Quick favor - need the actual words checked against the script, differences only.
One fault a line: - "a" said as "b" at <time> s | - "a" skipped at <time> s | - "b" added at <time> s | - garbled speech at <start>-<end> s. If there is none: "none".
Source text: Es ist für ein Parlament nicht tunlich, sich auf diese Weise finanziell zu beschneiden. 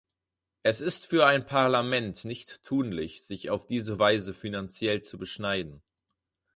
none